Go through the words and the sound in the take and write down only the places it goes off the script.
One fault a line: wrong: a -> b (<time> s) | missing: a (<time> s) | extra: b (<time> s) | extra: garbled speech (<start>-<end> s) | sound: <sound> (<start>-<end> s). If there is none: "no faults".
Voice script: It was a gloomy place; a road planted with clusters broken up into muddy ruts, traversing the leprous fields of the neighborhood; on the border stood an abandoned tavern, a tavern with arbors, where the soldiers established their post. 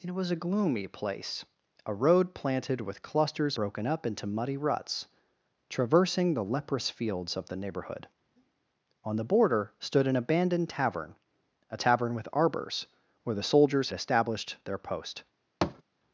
sound: thud (15.6-15.8 s)